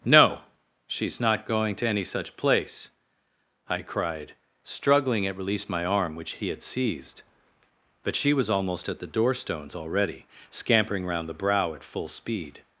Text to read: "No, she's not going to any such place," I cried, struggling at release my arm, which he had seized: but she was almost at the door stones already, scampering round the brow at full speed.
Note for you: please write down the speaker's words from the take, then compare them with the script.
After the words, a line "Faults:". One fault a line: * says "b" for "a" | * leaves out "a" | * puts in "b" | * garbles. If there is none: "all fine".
"No, she's not going to any such place," I cried, struggling at release my arm, which he had seized: but she was almost at the door stones already, scampering round the brow at full speed.
Faults:
all fine